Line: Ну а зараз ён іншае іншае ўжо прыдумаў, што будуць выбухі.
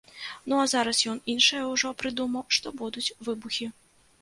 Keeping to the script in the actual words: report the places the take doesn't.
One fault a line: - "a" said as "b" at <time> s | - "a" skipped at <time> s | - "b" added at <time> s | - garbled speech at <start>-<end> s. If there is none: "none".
- "іншае" skipped at 1.6 s